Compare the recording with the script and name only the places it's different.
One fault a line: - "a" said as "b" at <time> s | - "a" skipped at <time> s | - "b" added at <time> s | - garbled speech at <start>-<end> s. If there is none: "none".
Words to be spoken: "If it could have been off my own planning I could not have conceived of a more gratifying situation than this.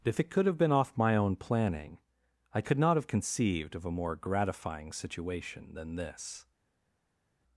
none